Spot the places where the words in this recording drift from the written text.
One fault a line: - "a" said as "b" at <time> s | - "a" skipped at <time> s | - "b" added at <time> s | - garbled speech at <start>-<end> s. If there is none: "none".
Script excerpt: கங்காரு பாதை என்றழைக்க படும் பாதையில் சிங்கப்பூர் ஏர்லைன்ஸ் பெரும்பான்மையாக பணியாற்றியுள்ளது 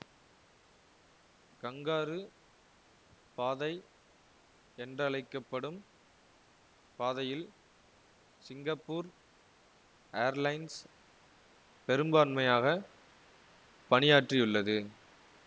none